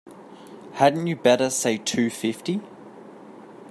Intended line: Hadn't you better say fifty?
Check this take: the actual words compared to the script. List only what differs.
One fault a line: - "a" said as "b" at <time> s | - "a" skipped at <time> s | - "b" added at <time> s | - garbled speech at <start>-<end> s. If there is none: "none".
- "two" added at 1.8 s